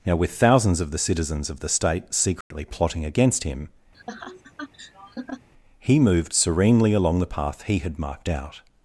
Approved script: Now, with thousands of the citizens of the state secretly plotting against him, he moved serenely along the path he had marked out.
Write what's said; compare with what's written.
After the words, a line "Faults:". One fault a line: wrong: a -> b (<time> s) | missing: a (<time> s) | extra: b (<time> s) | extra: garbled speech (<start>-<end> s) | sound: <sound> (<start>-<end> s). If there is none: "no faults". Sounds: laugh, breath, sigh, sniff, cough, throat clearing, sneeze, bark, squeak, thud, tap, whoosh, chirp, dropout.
Now, with thousands of the citizens of the state secretly plotting against him, he moved serenely along the path he had marked out.
Faults:
sound: dropout (2.4-2.5 s)
sound: laugh (3.9-5.5 s)